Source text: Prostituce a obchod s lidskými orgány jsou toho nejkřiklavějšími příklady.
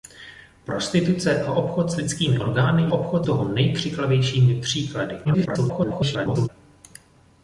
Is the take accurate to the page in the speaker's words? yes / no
no